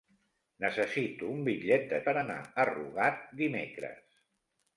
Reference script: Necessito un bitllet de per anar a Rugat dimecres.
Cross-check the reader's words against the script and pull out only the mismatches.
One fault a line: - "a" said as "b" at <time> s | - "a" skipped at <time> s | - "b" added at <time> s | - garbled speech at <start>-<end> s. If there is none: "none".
none